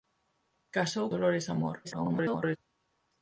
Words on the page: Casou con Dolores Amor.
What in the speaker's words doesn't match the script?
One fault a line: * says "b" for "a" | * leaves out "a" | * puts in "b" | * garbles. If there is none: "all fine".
* leaves out "con"
* garbles